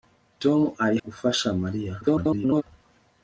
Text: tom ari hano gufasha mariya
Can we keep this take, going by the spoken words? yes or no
no